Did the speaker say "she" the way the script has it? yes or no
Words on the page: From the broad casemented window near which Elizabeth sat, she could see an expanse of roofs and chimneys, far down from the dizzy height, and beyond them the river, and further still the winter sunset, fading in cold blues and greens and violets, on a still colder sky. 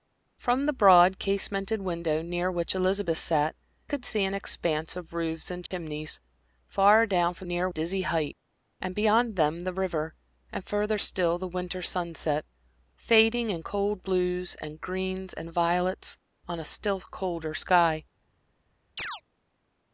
no